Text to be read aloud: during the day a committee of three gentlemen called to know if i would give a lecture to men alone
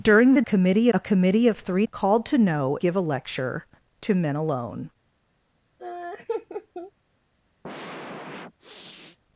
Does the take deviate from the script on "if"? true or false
true